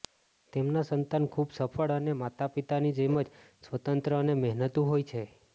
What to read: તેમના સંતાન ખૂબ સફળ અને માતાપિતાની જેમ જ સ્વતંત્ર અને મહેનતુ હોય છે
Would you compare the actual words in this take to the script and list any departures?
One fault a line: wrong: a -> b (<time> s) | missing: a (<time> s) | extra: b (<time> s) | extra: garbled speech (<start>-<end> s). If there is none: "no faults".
no faults